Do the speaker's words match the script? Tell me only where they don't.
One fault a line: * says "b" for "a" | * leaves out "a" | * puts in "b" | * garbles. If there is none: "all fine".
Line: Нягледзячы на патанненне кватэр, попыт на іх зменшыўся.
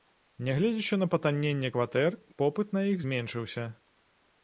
all fine